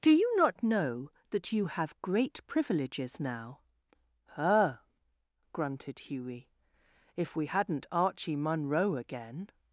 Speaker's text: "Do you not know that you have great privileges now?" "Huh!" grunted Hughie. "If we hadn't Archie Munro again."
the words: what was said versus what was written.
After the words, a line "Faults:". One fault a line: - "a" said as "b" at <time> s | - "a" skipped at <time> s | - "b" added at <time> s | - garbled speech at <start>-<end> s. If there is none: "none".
"Do you not know that you have great privileges now?" "Huh!" grunted Hughie. "If we hadn't Archie Munro again."
Faults:
none